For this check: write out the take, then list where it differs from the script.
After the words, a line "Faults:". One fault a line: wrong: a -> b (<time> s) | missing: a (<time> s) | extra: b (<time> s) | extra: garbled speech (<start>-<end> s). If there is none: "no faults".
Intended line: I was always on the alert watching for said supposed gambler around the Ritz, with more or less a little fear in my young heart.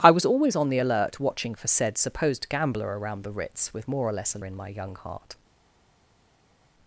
I was always on the alert watching for said supposed gambler around the Ritz, with more or less a in my young heart.
Faults:
missing: little fear (4.4 s)